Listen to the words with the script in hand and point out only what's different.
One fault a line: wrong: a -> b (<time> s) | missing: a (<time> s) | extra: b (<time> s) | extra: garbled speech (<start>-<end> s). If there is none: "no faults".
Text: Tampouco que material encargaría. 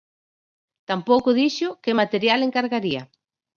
extra: dixo (1.4 s)